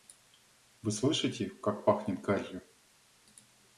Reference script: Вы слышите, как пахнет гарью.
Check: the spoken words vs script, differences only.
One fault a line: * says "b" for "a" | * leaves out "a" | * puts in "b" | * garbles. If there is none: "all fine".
all fine